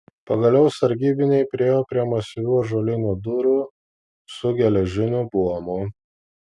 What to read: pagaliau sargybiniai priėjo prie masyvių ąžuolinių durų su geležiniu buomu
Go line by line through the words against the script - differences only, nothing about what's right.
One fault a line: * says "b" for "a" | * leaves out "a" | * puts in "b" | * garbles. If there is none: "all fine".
all fine